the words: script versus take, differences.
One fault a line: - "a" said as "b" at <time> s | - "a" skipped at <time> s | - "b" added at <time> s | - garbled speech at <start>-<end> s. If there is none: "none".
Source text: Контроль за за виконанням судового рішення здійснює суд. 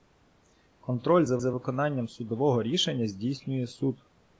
none